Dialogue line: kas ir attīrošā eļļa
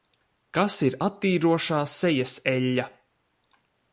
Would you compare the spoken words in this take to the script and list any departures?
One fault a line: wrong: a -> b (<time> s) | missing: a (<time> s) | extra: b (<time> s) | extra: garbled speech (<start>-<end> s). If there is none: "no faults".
extra: sejas (1.9 s)